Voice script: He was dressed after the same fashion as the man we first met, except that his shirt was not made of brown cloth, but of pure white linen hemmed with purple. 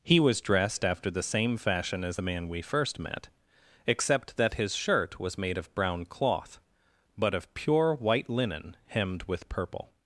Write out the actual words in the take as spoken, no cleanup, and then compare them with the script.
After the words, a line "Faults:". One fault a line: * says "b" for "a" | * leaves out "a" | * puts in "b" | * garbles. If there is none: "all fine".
He was dressed after the same fashion as the man we first met, except that his shirt was made of brown cloth, but of pure white linen hemmed with purple.
Faults:
* leaves out "not"